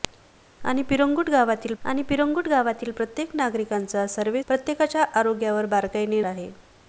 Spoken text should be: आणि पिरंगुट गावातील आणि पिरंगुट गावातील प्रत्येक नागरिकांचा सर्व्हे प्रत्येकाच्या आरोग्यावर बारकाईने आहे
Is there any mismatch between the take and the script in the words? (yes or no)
no